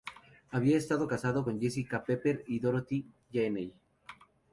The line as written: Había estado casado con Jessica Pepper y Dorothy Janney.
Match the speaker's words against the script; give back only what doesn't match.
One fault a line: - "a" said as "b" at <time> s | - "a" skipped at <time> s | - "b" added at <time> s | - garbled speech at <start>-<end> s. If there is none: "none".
none